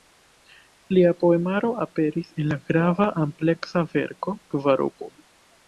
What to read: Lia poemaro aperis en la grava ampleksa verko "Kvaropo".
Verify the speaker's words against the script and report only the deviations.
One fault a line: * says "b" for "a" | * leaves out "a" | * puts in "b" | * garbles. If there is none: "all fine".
all fine